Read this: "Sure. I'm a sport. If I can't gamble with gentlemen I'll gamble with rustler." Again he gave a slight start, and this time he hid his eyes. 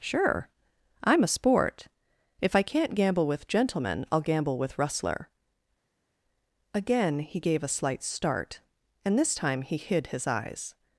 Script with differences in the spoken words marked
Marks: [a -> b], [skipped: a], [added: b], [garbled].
"Sure. I'm a sport. If I can't gamble with gentlemen I'll gamble with rustler." Again he gave a slight start, and this time he hid his eyes.